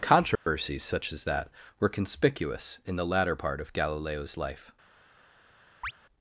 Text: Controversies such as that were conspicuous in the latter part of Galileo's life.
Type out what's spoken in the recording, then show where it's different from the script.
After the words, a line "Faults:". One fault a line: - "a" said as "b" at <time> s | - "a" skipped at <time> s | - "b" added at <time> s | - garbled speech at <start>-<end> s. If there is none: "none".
Controversies such as that were conspicuous in the latter part of Galileo's life.
Faults:
none